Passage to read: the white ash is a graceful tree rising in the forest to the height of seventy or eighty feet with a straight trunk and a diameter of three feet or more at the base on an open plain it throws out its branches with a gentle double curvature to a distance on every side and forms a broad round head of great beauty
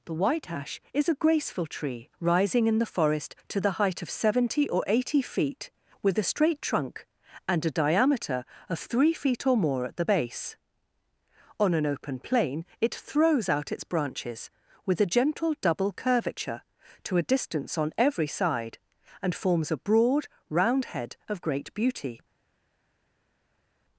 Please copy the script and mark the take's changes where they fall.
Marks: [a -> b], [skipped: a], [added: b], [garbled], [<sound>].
the white ash is a graceful tree rising in the forest to the height of seventy or eighty feet with a straight trunk and a diameter of three feet or more at the base on an open plain it throws out its branches with a gentle double curvature to a distance on every side and forms a broad round head of great beauty